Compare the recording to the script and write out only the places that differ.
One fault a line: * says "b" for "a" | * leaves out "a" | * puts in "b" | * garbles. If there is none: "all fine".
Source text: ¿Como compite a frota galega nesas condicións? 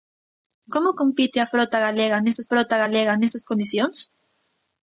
* puts in "frota galega nesas"